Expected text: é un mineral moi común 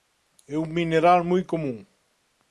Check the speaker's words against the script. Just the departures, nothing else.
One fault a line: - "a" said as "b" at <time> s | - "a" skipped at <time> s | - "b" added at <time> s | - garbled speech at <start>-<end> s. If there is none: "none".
none